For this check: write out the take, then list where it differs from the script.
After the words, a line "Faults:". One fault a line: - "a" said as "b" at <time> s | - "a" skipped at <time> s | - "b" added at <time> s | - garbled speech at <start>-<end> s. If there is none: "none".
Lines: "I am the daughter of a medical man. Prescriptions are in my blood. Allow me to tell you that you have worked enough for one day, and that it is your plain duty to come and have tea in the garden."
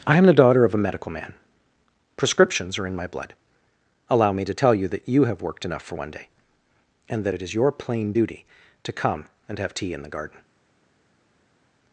"I am the daughter of a medical man. Prescriptions are in my blood. Allow me to tell you that you have worked enough for one day, and that it is your plain duty to come and have tea in the garden."
Faults:
none